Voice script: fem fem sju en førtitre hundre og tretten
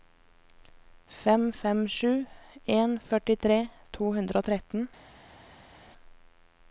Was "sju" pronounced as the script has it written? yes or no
yes